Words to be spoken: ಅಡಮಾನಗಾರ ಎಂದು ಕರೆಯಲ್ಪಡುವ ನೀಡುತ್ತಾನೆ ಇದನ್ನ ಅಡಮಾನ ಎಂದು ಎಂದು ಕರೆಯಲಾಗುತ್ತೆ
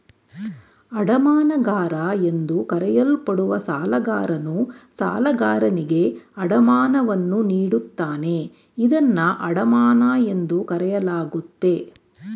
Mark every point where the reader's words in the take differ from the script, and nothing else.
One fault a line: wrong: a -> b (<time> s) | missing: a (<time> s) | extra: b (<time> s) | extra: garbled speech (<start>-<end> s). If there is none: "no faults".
extra: ಸಾಲಗಾರನು ಸಾಲಗಾರನಿಗೆ ಅಡಮಾನವನ್ನು (3.6 s)
missing: ಎಂದು (10.6 s)